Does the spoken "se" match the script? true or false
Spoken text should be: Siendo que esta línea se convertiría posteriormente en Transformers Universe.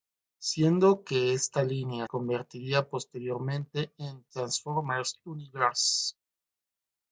false